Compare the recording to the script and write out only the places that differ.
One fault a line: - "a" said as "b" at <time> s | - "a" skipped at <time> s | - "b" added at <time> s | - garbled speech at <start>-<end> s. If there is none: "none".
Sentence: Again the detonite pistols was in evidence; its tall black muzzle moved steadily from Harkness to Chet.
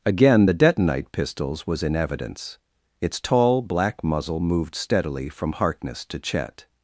none